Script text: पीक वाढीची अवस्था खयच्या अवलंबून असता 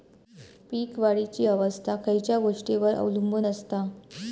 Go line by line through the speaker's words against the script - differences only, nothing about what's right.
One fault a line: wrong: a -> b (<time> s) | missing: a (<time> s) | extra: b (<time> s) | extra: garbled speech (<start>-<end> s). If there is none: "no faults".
extra: गोष्टींवर (2.4 s)